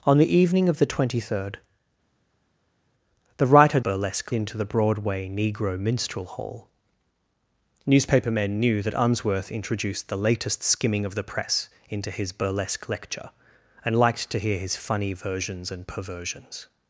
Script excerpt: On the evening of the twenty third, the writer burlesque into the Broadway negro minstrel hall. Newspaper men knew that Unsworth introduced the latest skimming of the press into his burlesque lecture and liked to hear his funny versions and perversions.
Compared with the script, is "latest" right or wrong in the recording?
right